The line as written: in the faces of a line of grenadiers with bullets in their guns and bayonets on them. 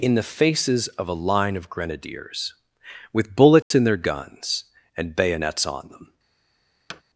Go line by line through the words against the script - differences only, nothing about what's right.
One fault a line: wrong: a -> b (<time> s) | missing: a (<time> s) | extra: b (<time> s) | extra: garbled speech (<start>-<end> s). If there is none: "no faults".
no faults